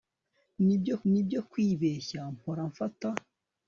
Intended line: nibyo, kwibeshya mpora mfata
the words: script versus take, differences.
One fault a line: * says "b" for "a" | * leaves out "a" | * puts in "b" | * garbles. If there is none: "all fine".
* puts in "nibyo"